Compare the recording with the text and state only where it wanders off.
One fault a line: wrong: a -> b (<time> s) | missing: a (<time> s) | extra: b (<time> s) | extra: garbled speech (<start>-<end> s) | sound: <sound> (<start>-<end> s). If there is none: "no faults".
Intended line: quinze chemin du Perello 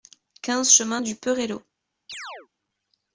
sound: chirp (2.1-2.5 s)